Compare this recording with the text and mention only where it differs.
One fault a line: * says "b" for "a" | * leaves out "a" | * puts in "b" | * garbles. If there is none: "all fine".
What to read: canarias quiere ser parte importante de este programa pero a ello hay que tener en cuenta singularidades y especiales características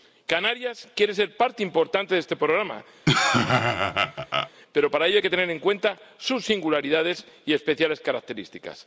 * says "para" for "a"
* puts in "sus"